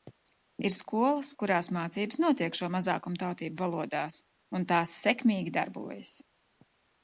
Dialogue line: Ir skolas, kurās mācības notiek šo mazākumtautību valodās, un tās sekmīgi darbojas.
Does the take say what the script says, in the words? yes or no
yes